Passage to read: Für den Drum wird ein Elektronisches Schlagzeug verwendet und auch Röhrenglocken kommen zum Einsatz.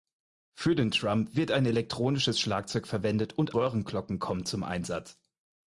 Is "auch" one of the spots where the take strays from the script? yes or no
yes